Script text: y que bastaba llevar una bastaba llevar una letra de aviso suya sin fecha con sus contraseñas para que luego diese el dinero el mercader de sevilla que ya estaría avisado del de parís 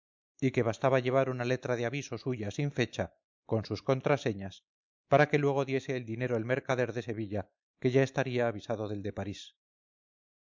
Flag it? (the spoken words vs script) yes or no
yes